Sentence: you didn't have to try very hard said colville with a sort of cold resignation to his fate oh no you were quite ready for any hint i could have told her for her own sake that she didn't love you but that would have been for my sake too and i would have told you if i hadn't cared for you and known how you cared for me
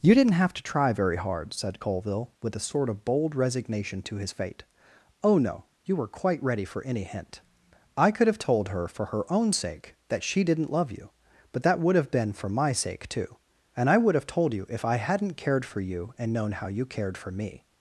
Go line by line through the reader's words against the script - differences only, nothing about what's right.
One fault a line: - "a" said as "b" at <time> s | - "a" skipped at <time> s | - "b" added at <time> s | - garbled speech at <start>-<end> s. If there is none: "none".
- "cold" said as "bold" at 3.0 s